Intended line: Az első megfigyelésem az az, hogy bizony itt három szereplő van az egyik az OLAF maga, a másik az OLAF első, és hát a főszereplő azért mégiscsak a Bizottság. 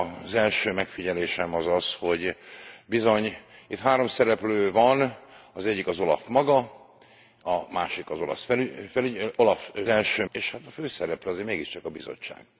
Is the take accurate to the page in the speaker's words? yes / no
yes